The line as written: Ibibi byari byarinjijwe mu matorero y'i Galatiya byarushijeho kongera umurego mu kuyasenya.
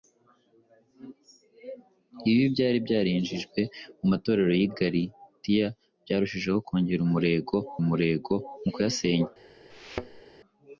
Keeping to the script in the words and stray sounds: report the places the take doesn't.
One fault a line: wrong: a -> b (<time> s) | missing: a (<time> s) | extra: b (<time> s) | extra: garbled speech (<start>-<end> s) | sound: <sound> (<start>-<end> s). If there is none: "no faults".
extra: umurego (7.8 s)
sound: thud (9.7-10.2 s)